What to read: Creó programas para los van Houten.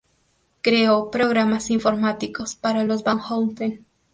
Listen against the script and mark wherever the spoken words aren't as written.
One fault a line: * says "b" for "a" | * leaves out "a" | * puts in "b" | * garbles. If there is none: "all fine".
* puts in "informáticos"